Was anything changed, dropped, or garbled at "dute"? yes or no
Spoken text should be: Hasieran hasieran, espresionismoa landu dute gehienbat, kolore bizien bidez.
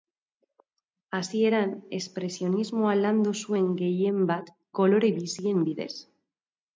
yes